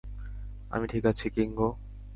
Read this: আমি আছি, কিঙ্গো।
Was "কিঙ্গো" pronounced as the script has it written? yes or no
yes